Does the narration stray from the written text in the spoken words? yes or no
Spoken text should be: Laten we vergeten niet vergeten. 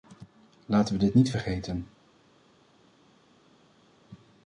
yes